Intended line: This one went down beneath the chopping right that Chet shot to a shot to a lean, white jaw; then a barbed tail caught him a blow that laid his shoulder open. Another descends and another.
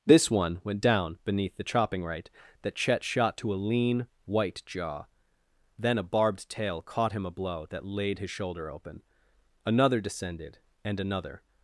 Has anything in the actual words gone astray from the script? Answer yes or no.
yes